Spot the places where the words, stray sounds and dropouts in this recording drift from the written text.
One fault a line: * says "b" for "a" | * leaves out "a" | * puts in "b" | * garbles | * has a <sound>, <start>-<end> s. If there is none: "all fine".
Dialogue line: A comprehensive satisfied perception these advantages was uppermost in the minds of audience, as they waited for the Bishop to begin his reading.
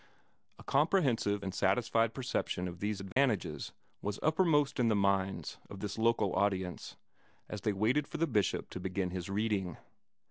* puts in "and"
* puts in "of"
* has a dropout, 3.1-3.2 s
* puts in "this local"